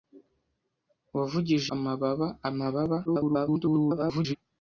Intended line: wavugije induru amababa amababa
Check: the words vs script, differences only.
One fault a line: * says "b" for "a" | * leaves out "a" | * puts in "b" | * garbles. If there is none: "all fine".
* leaves out "induru"
* garbles